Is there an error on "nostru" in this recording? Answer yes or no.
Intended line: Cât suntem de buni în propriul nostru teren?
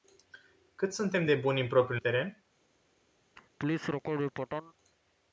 yes